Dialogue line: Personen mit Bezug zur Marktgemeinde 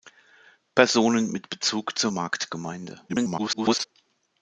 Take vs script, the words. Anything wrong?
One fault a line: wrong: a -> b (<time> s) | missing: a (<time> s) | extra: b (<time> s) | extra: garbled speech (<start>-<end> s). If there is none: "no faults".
extra: garbled speech (3.1-3.8 s)